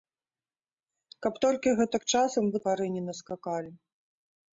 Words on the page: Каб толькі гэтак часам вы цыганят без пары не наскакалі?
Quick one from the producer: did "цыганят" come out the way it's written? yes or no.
no